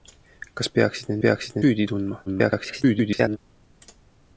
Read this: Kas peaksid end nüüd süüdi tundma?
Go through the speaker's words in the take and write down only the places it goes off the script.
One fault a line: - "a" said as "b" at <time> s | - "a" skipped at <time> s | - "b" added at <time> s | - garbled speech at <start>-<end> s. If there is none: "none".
- "nüüd" said as "peaksid" at 1.2 s
- garbled speech at 2.3-3.4 s